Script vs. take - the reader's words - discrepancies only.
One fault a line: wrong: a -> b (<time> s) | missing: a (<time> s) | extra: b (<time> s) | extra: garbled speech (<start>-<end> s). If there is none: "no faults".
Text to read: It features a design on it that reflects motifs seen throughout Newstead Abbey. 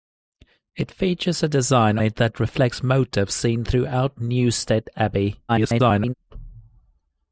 missing: on (2.0 s)
extra: garbled speech (5.5-6.1 s)